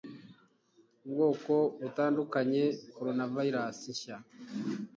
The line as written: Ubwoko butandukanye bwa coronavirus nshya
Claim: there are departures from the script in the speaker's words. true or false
true